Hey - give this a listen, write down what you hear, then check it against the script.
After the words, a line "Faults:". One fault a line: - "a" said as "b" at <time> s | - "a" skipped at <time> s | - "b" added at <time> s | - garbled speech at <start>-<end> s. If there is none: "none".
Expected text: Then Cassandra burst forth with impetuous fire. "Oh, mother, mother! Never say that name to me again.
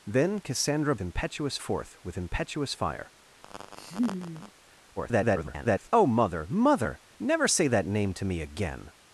Then Cassandra impetuous forth with impetuous fire. [garbled] "Oh, mother, mother! Never say that name to me again.
Faults:
- "burst" said as "impetuous" at 1.0 s
- garbled speech at 5.0-5.9 s